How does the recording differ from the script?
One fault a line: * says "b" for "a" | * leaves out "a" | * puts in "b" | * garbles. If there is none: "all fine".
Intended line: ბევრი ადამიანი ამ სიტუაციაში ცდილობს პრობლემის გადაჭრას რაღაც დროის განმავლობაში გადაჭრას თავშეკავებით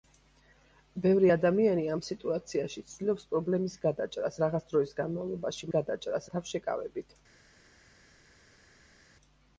all fine